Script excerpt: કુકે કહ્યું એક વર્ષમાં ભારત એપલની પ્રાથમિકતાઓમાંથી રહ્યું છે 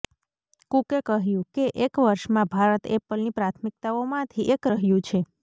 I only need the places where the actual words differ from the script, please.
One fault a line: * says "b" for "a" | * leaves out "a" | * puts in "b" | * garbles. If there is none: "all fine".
* puts in "કે"
* puts in "એક"